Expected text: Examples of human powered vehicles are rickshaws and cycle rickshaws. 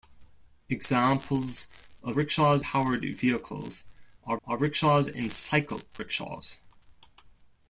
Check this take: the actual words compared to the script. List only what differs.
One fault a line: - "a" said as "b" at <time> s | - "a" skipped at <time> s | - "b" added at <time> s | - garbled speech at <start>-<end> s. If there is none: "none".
- "human" said as "rickshaws" at 2.1 s
- "are" added at 4.4 s